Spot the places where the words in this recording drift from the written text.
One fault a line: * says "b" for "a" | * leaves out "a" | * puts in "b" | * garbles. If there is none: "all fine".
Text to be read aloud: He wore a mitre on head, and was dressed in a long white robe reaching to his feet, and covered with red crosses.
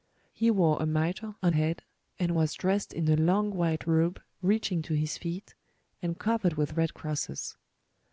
all fine